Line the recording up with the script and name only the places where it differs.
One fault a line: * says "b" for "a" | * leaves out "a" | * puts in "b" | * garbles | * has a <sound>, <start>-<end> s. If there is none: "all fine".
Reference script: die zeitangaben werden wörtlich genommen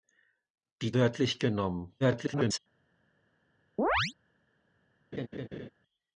* leaves out "zeitangaben werden"
* garbles
* has a chirp, 3.8-4.1 s
* has a laugh, 5.1-5.7 s